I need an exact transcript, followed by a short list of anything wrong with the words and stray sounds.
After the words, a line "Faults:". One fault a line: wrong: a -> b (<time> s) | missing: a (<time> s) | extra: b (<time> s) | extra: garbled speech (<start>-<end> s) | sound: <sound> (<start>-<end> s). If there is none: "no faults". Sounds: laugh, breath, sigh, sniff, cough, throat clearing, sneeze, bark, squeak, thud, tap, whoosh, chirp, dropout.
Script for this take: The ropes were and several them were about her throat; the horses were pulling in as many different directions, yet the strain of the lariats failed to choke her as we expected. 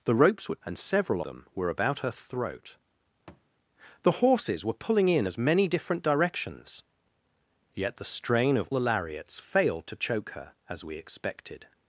The ropes were and several them were about her throat; the horses were pulling in as many different directions, yet the strain of the lariats failed to choke her as we expected.
Faults:
sound: thud (3.3-3.5 s)